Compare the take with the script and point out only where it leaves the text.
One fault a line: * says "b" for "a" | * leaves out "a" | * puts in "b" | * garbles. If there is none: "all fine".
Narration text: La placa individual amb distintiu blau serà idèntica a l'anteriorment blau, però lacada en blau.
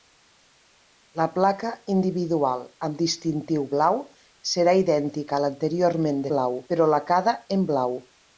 all fine